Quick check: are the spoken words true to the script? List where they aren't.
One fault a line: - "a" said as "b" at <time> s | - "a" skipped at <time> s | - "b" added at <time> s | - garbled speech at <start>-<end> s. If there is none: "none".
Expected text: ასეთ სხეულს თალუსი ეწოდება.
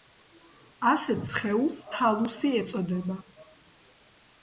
none